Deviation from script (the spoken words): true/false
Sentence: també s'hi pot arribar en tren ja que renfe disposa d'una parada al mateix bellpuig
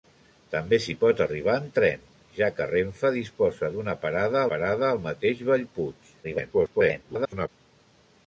true